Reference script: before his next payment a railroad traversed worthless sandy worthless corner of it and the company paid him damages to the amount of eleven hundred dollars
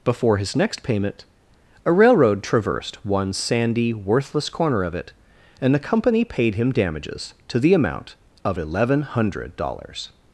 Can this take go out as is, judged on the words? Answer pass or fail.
fail